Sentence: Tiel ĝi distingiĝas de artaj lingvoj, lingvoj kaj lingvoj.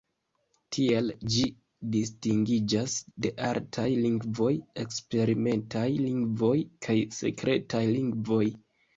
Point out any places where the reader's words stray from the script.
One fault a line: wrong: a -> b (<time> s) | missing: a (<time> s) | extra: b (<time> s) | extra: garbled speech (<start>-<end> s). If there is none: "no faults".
extra: eksperimentaj (4.8 s)
extra: sekretaj (7.2 s)